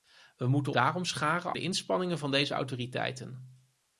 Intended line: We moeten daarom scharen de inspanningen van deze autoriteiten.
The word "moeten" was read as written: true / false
true